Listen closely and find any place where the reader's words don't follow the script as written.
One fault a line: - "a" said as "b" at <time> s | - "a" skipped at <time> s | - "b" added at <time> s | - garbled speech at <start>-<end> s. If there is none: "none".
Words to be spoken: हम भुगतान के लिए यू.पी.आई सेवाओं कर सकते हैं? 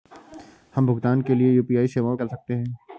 none